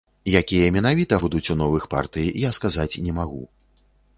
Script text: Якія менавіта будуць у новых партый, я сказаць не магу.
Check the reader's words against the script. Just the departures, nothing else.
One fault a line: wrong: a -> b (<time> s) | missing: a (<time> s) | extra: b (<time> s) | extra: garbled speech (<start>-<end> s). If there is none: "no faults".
no faults